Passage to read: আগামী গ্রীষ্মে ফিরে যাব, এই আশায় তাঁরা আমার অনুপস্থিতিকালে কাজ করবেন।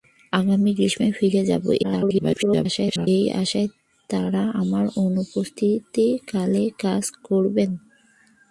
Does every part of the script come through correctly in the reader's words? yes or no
no